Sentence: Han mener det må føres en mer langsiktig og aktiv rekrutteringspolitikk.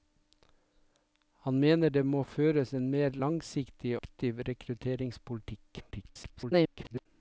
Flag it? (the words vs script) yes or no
yes